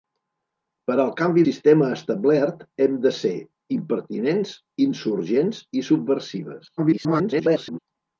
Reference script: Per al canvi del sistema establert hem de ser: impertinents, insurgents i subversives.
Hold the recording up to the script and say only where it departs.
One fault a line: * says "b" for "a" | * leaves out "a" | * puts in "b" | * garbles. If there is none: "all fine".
* leaves out "del"
* garbles